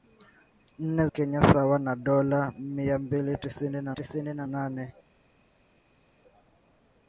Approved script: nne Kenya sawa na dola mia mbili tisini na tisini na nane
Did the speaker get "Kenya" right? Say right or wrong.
right